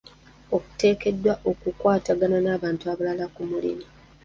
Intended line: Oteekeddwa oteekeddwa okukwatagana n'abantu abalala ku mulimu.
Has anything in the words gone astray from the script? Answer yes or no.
yes